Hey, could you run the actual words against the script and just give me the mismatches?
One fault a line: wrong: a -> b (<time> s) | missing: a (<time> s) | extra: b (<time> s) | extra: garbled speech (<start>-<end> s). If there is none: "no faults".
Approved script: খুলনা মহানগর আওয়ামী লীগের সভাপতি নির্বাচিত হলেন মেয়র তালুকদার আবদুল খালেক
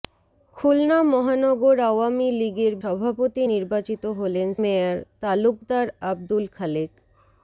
no faults